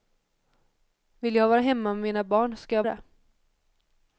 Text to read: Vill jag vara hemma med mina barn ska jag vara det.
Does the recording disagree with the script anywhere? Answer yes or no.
yes